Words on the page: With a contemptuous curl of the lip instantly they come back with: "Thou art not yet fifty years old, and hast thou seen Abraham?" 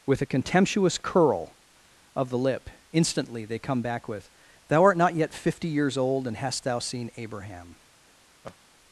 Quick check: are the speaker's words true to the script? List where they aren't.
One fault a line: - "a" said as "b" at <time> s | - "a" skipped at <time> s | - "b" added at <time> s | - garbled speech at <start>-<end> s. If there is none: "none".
none